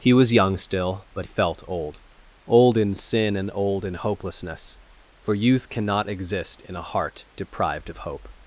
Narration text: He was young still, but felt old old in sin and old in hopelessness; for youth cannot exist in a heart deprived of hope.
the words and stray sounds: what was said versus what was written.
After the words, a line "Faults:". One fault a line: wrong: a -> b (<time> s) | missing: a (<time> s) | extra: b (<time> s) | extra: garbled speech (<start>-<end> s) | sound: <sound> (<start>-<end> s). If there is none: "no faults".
He was young still, but felt old old in sin and old in hopelessness; for youth cannot exist in a heart deprived of hope.
Faults:
no faults